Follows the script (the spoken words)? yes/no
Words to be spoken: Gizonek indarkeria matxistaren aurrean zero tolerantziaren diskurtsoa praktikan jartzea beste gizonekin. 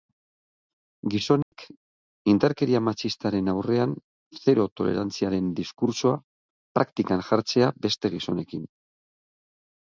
yes